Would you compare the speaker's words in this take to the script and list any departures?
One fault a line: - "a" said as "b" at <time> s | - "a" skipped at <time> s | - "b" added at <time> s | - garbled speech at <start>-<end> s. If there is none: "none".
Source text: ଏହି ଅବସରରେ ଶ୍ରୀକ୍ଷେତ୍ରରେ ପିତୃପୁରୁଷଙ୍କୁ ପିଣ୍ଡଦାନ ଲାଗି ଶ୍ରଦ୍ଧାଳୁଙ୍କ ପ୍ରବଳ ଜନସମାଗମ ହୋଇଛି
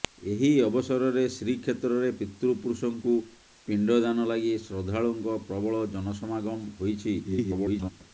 - garbled speech at 7.2-7.9 s